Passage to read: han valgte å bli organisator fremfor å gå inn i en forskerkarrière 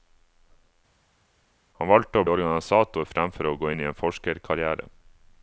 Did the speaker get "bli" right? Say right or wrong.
wrong